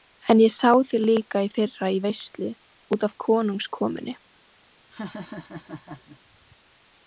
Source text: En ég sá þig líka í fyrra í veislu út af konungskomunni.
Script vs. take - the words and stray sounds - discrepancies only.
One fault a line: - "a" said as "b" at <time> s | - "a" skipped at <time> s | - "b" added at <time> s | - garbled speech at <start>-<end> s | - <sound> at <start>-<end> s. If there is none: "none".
- laugh at 4.9-6.2 s